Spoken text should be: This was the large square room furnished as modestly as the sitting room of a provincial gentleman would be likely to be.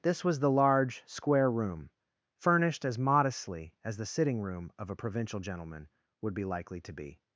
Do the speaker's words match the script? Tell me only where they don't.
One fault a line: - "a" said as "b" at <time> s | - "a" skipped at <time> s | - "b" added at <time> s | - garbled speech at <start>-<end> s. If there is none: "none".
none